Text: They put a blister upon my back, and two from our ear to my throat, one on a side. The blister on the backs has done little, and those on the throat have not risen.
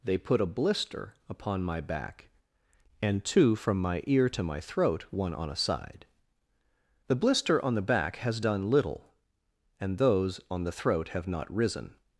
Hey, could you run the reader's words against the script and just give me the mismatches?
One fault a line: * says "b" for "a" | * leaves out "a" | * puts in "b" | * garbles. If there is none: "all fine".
* says "my" for "our"
* says "back" for "backs"